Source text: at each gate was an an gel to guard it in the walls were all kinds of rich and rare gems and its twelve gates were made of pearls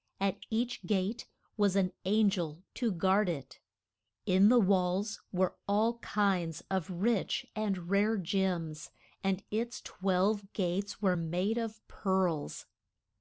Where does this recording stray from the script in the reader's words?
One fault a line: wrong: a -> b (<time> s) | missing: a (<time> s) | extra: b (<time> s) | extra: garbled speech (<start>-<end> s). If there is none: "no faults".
no faults